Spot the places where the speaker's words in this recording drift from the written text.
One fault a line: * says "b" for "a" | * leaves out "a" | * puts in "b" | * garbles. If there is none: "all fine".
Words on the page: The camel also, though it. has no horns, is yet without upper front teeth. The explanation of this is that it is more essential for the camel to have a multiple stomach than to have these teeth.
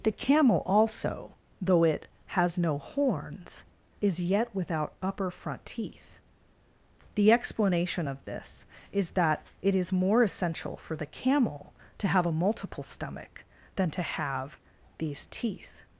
all fine